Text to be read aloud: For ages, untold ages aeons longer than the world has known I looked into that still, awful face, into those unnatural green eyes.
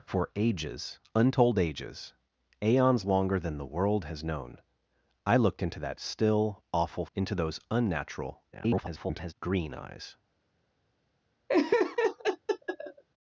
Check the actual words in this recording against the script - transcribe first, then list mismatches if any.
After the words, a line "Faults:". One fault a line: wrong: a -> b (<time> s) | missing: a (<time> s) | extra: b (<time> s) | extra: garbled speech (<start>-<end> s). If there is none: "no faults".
For ages, untold ages aeons longer than the world has known I looked into that still, awful into those unnatural [garbled] green eyes.
Faults:
missing: face (7.1 s)
extra: garbled speech (8.5-9.3 s)